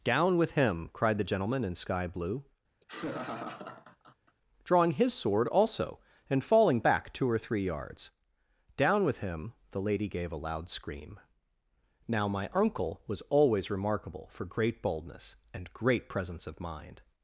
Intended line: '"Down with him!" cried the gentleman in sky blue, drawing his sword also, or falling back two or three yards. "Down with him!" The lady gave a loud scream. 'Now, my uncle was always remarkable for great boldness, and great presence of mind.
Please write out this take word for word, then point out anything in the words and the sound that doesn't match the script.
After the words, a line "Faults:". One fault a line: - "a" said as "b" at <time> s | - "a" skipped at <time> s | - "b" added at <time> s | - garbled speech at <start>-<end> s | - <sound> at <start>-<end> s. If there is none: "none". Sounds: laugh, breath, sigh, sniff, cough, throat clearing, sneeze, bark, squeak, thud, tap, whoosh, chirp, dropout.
'"Down with him!" cried the gentleman in sky blue, drawing his sword also, and falling back two or three yards. "Down with him!" The lady gave a loud scream. 'Now, my uncle was always remarkable for great boldness, and great presence of mind.
Faults:
- laugh at 2.8-4.4 s
- "or" said as "and" at 6.3 s